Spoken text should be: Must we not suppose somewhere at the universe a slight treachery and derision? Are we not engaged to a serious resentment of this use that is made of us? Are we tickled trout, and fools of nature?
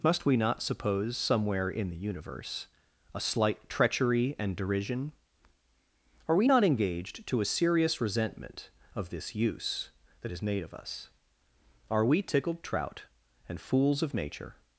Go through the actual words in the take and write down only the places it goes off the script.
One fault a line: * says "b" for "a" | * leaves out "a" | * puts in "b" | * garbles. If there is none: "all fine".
* says "in" for "at"